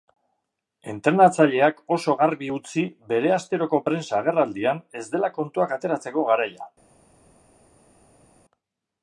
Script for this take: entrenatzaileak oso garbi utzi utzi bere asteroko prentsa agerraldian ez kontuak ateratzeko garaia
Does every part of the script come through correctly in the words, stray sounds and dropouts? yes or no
no